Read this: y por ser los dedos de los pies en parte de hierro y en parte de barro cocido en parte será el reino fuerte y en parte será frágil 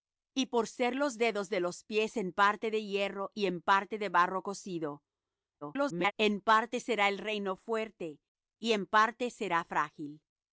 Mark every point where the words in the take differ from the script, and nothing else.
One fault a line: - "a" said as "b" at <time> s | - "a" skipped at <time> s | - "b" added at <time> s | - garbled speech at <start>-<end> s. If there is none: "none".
- garbled speech at 5.6-6.1 s